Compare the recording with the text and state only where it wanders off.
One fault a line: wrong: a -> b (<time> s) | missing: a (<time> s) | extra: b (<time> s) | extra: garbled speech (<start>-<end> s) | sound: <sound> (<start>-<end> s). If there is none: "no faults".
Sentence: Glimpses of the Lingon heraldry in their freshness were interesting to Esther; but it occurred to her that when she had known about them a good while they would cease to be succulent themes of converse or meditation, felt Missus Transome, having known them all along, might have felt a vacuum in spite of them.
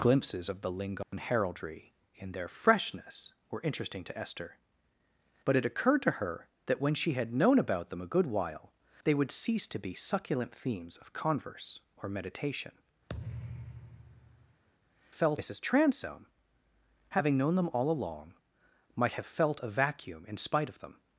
sound: dropout (1.0-1.1 s)
sound: thud (13.1-14.6 s)